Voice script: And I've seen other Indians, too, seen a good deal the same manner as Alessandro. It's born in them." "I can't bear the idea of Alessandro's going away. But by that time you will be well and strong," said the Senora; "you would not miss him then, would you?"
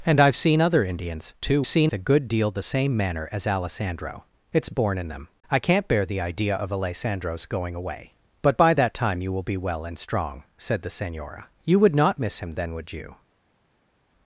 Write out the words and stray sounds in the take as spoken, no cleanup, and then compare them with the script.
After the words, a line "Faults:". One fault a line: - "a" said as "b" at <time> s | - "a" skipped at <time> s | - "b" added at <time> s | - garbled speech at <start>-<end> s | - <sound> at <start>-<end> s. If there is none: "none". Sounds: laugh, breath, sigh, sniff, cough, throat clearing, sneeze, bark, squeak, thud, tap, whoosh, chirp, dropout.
And I've seen other Indians, too, seen a good deal the same manner as Alessandro. It's born in them." "I can't bear the idea of Alessandro's going away. But by that time you will be well and strong," said the Senora; "you would not miss him then, would you?"
Faults:
none